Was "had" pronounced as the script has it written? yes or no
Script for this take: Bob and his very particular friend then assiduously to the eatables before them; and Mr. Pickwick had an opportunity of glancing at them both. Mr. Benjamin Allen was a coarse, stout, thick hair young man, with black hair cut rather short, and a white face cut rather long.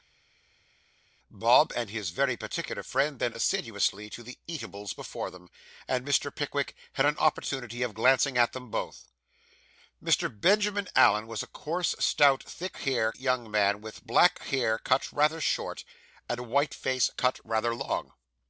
yes